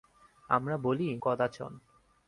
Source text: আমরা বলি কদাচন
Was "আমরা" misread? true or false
false